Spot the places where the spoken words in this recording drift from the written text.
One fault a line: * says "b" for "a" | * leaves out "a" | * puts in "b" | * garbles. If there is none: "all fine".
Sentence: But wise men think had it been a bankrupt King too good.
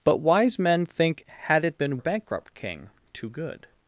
all fine